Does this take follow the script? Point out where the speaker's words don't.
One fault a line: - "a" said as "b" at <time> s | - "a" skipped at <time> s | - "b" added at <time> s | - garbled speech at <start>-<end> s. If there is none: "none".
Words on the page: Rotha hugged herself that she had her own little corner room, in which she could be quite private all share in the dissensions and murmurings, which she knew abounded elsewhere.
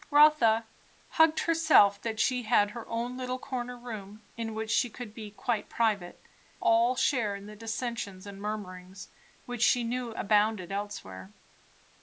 none